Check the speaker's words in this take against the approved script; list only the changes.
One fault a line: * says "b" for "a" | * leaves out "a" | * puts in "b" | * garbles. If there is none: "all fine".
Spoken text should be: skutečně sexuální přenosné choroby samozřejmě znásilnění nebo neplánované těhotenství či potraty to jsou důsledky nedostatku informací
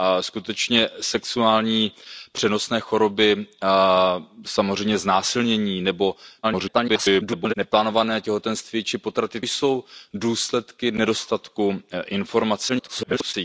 * garbles
* leaves out "to"
* garbles